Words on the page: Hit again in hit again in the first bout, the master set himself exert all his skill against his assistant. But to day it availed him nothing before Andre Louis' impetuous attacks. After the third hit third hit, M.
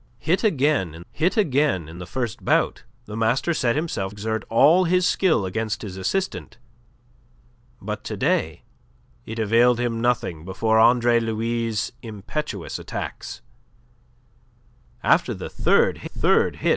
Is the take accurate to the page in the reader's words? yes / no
yes